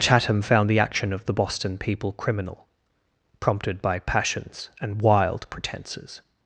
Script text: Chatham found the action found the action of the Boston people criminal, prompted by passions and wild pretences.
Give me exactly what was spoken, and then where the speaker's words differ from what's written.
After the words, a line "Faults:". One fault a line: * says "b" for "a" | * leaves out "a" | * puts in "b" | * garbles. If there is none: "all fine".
Chatham found the action of the Boston people criminal, prompted by passions and wild pretences.
Faults:
* leaves out "found the action"